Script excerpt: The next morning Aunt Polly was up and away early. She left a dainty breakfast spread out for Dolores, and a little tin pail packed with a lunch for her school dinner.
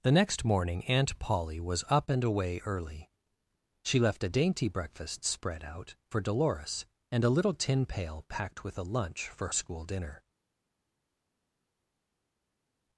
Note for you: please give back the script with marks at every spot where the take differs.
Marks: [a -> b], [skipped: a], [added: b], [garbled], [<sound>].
The next morning Aunt Polly was up and away early. She left a dainty breakfast spread out for Dolores, and a little tin pail packed with a lunch for [skipped: her] school dinner.